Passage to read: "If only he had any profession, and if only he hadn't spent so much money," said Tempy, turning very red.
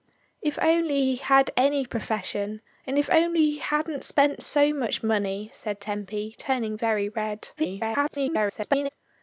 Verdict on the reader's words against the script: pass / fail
fail